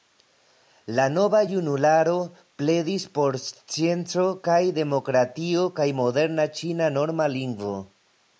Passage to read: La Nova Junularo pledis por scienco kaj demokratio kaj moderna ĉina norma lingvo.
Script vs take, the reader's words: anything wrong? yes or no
no